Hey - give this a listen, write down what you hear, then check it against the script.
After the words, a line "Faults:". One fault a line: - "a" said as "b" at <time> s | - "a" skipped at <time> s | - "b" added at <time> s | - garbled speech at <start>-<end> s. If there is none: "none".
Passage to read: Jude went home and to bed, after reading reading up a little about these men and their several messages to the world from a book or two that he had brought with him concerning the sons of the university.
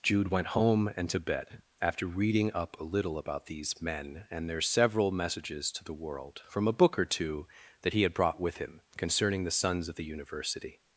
Jude went home and to bed, after reading up a little about these men and their several messages to the world from a book or two that he had brought with him concerning the sons of the university.
Faults:
- "reading" skipped at 2.5 s